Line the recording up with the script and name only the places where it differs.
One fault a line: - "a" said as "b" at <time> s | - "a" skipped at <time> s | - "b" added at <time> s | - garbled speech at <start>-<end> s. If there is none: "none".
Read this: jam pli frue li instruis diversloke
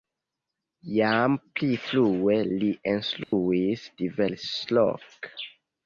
none